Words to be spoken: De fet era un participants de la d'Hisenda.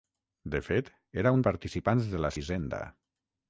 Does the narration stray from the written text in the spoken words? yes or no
no